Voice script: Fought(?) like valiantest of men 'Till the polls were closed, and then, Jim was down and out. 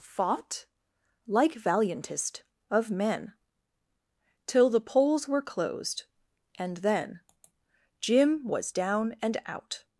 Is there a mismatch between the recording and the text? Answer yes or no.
no